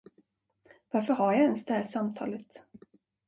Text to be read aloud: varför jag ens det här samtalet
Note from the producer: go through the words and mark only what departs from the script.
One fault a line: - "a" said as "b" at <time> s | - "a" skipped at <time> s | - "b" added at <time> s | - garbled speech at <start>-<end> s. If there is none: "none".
- "har" added at 1.1 s